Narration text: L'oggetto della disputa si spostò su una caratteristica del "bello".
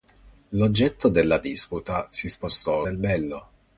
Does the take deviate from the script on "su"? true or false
true